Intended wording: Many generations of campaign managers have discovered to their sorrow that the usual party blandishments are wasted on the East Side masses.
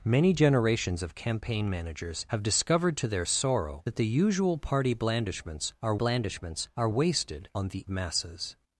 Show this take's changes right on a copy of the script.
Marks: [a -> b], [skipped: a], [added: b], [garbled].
Many generations of campaign managers have discovered to their sorrow that the usual party blandishments are [added: blandishments are] wasted on the [skipped: East Side] masses.